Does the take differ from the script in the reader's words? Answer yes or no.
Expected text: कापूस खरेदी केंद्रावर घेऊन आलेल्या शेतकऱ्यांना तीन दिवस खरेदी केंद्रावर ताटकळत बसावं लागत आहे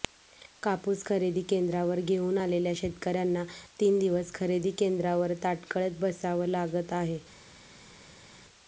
no